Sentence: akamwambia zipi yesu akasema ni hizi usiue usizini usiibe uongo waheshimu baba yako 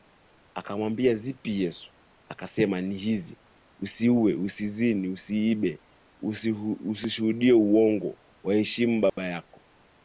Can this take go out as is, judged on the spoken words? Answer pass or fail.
fail